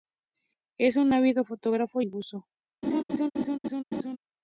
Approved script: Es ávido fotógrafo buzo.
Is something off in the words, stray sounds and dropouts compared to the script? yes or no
yes